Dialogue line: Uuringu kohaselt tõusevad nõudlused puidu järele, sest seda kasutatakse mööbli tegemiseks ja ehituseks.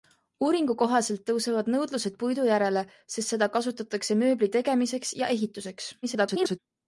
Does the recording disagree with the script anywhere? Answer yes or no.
yes